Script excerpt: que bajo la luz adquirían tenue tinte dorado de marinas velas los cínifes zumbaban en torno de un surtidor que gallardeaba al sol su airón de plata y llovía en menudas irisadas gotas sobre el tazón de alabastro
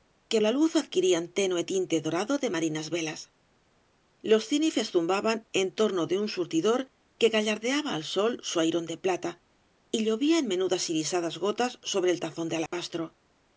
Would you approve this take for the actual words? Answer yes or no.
no